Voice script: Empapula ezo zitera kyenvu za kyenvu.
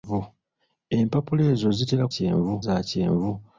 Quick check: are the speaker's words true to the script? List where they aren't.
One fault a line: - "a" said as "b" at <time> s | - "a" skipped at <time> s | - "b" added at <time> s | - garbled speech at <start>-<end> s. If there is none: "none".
none